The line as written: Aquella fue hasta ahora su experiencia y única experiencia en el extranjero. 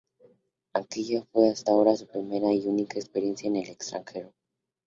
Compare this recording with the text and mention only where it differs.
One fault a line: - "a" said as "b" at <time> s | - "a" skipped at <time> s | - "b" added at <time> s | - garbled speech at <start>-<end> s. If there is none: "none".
- "experiencia" said as "primera" at 2.1 s